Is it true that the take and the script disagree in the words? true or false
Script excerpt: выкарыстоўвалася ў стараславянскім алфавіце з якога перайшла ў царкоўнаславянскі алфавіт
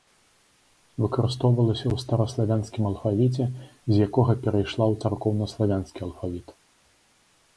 false